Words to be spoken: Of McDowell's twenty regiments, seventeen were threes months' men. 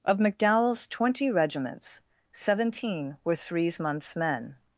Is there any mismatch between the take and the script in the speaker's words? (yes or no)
no